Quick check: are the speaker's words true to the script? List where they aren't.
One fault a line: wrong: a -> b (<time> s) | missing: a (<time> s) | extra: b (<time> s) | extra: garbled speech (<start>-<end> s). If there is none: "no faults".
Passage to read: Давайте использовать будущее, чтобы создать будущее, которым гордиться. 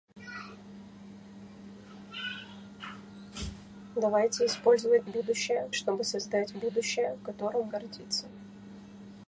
no faults